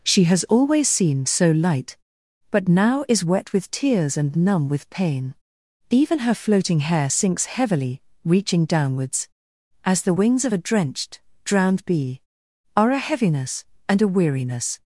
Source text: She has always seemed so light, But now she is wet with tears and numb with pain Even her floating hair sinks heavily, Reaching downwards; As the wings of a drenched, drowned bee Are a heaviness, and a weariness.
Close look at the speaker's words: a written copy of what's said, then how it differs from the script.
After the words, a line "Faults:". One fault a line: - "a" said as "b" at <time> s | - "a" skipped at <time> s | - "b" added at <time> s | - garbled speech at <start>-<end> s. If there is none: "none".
She has always seemed so light, But now is wet with tears and numb with pain Even her floating hair sinks heavily, Reaching downwards; As the wings of a drenched, drowned bee Are a heaviness, and a weariness.
Faults:
- "she" skipped at 3.0 s